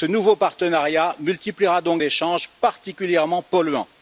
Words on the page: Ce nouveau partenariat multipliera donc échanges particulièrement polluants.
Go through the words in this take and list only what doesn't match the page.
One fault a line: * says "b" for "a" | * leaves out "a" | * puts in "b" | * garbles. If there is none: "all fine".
all fine